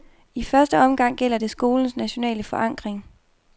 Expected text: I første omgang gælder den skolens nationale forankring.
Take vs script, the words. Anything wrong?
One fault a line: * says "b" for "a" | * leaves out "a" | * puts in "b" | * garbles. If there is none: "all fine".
* says "det" for "den"